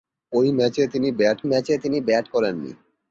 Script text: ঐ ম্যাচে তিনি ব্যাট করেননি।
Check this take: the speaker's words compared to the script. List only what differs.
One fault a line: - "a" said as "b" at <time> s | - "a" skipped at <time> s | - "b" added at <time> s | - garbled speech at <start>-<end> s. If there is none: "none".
- "ম্যাচে তিনি ব্যাট" added at 1.5 s